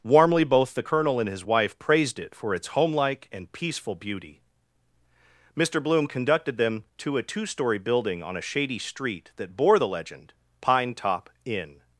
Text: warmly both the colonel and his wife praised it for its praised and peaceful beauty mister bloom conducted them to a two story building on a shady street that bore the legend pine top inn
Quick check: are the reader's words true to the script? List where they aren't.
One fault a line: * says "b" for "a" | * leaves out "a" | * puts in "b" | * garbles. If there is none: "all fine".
* says "homelike" for "praised"